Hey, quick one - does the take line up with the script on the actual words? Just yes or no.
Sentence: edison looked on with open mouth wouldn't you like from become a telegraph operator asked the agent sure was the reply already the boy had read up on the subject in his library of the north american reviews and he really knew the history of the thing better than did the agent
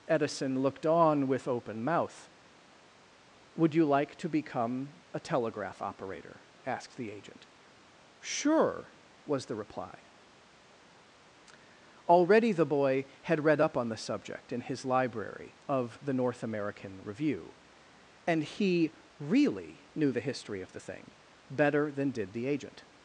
no